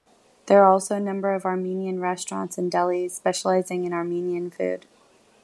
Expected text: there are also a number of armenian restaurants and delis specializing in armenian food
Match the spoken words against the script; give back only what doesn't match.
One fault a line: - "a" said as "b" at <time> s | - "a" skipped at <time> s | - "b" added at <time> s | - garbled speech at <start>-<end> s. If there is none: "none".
none